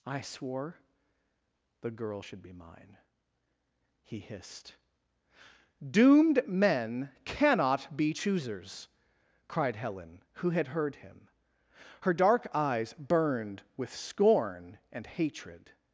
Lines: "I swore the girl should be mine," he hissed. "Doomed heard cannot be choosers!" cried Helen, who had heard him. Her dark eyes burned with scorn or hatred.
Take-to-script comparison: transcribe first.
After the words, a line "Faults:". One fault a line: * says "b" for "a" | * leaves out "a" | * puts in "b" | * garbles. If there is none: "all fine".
"I swore the girl should be mine," he hissed. "Doomed men cannot be choosers!" cried Helen, who had heard him. Her dark eyes burned with scorn and hatred.
Faults:
* says "men" for "heard"
* says "and" for "or"